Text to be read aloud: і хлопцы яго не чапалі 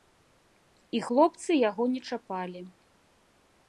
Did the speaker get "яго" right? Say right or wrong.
right